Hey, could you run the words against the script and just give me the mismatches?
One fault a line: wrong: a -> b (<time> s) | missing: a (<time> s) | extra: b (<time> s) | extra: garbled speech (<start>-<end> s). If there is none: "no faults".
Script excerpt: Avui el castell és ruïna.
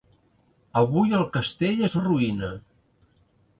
no faults